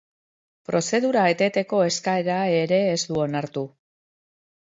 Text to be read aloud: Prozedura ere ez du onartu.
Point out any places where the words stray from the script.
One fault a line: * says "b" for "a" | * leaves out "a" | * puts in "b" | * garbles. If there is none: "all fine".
* puts in "eteteko eskaera"